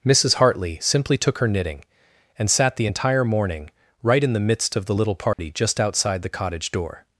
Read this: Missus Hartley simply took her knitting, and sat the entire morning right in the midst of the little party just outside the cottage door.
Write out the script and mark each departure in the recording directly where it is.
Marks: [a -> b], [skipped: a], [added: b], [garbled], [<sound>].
Missus Hartley simply took her knitting, and sat the entire morning right in the midst of the little party [dropout] just outside the cottage door.